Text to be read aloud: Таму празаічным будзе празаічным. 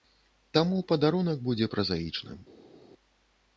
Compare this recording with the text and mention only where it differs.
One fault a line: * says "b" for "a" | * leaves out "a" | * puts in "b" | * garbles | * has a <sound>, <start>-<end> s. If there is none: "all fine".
* says "падарунак" for "празаічным"